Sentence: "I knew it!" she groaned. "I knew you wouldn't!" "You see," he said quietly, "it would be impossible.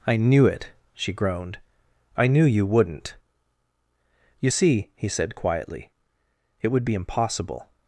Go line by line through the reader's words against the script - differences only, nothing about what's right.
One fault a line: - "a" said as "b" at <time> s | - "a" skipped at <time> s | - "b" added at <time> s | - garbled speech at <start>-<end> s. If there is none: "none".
none